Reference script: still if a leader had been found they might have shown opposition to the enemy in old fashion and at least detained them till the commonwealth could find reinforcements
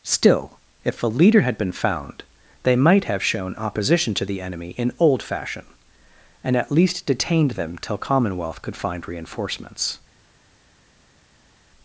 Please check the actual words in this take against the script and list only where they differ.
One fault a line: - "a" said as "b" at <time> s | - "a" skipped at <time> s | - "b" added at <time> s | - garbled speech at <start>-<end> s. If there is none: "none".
- "the" skipped at 8.0 s